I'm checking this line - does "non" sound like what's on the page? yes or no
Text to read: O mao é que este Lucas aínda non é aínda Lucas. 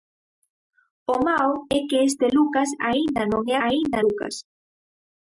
yes